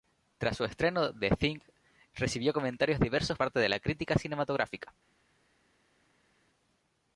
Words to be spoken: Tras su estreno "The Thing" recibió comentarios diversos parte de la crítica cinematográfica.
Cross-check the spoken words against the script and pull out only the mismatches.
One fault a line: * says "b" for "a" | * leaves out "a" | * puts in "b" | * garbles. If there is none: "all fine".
all fine